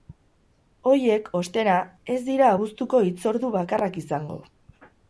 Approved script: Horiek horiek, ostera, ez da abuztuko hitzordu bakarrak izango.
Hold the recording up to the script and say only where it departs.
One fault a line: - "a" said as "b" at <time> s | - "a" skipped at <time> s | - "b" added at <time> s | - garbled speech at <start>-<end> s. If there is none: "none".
- "horiek" skipped at 1.3 s
- "da" said as "dira" at 2.3 s